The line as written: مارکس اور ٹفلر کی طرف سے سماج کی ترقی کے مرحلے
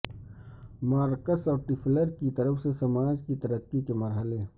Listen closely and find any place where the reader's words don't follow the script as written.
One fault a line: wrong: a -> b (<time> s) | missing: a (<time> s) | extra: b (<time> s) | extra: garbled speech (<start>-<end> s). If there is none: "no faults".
no faults